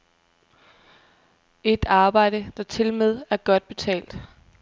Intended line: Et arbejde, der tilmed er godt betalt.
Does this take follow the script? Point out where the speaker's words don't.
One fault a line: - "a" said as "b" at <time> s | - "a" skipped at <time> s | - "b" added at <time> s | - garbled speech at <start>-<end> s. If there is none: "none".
none